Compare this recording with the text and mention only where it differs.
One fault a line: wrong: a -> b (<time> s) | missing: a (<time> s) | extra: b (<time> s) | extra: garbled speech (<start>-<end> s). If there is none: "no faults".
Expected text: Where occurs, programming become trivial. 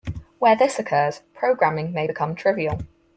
extra: this (0.6 s)
extra: may (1.9 s)